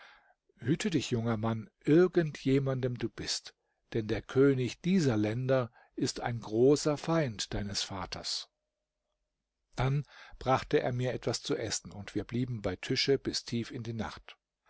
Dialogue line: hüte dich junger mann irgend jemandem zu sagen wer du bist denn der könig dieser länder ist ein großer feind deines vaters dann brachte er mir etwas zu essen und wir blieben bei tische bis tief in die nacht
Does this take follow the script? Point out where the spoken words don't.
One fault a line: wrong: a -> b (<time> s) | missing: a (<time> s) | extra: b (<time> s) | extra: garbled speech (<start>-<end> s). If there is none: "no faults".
missing: zu sagen wer (3.0 s)